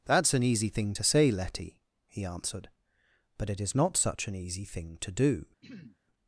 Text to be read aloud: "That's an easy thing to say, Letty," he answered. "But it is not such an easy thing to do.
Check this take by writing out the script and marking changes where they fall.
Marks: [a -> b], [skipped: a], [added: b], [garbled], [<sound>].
"That's an easy thing to say, Letty," he answered. "But it is not such an easy thing to do. [throat clearing]